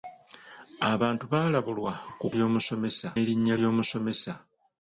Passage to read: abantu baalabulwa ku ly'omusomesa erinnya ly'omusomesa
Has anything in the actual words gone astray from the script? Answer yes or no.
no